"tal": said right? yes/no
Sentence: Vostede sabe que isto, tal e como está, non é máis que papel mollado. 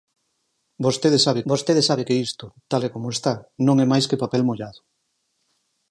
yes